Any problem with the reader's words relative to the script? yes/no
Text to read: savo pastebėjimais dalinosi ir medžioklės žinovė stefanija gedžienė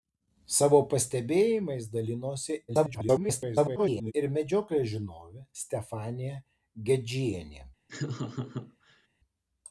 yes